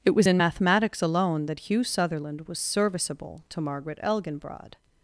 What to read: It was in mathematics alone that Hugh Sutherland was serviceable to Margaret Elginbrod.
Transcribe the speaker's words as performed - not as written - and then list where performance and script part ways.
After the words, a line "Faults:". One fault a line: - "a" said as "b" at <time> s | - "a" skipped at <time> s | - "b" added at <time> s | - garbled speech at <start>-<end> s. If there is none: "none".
It was in mathematics alone that Hugh Sutherland was serviceable to Margaret Elginbrod.
Faults:
none